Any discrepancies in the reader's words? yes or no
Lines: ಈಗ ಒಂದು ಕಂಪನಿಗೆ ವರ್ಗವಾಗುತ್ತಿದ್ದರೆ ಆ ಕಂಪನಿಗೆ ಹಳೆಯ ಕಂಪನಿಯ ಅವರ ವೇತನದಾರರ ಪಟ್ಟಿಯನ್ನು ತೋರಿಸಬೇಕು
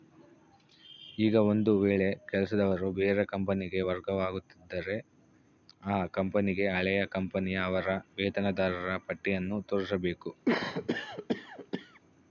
yes